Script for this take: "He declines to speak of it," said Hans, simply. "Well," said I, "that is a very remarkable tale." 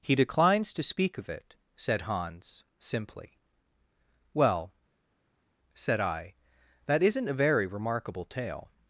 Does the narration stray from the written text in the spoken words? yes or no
yes